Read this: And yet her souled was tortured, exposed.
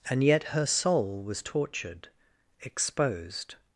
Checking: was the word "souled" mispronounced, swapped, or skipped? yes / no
yes